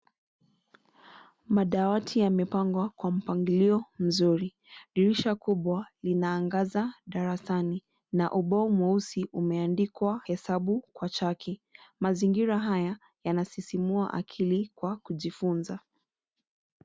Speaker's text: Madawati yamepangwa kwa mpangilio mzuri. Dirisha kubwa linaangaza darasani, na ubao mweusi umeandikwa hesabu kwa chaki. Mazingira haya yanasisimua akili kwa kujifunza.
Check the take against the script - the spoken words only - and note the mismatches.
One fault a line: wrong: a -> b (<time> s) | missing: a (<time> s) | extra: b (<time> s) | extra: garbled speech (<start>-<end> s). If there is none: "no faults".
no faults